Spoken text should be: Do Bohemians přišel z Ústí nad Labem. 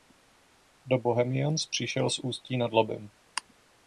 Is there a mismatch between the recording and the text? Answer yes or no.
no